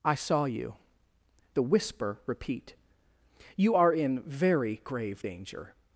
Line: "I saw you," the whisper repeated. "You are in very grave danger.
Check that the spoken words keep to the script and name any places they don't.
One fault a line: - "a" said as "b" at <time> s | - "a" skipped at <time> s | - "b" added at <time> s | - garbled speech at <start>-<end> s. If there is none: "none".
- "repeated" said as "repeat" at 2.2 s